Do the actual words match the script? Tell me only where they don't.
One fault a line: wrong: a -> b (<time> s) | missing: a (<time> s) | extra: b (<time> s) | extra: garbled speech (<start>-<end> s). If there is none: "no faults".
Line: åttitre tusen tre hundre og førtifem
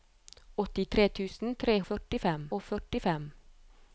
wrong: hundre -> førtifem (1.9 s)